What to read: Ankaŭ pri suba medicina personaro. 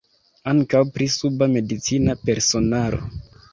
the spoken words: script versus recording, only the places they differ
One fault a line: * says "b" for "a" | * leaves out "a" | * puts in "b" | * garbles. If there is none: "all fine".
all fine